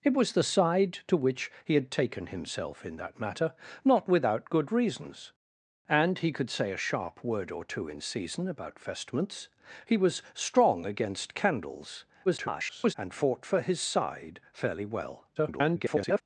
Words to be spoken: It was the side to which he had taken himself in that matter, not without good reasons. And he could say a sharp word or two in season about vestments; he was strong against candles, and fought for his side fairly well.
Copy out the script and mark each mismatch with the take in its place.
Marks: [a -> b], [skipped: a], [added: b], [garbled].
It was the side to which he had taken himself in that matter, not without good reasons. And he could say a sharp word or two in season about vestments; he was strong against candles, [garbled] and fought for his side fairly well. [garbled]